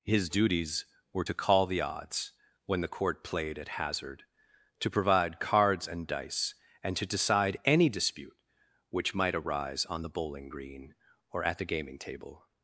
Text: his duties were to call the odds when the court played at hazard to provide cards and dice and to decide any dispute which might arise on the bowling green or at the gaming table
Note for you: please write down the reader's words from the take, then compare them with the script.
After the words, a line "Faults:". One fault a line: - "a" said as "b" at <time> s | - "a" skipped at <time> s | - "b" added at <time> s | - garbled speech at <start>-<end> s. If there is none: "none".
his duties were to call the odds when the court played at hazard to provide cards and dice and to decide any dispute which might arise on the bowling green or at the gaming table
Faults:
none